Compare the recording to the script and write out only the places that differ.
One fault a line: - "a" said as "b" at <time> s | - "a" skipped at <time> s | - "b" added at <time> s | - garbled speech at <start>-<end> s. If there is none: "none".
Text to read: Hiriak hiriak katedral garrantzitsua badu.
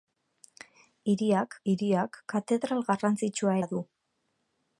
none